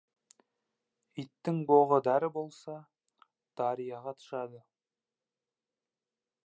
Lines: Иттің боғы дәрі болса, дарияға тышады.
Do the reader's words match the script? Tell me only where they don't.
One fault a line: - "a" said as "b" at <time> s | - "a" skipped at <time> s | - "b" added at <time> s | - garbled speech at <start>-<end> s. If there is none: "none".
none